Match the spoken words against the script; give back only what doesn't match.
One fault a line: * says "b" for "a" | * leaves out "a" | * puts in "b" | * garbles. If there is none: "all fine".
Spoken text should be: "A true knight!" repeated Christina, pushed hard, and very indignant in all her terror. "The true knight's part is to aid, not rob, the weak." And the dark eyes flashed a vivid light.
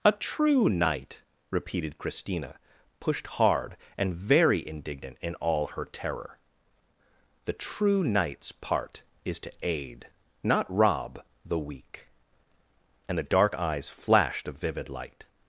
all fine